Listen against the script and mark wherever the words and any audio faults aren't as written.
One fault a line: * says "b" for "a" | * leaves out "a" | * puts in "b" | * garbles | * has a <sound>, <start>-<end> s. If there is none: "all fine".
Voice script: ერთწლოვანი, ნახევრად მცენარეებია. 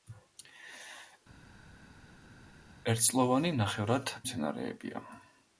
all fine